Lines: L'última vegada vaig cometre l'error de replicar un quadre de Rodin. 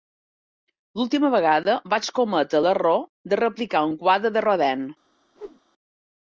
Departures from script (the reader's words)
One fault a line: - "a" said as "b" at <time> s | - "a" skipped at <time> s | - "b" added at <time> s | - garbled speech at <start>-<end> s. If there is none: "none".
none